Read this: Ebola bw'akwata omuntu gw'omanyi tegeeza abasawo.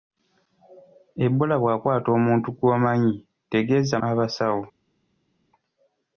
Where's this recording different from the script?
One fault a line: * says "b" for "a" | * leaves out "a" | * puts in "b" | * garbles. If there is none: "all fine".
all fine